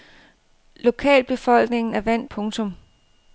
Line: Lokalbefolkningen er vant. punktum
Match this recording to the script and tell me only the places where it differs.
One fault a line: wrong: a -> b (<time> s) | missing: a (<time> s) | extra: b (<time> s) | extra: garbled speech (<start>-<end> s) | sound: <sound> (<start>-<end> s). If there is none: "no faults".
no faults